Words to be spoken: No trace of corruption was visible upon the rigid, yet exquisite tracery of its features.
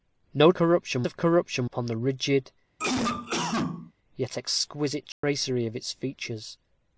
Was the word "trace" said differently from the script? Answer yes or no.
yes